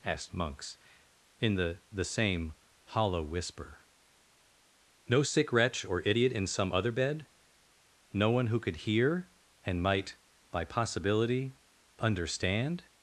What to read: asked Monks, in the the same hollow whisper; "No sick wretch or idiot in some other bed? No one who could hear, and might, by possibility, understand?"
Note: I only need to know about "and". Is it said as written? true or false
true